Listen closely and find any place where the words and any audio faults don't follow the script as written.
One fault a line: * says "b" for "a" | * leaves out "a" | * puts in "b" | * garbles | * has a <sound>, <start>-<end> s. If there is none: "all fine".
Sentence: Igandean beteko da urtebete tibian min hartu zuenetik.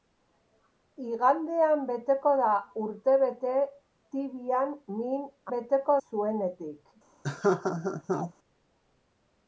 * says "beteko" for "hartu"
* has a laugh, 7.2-8.3 s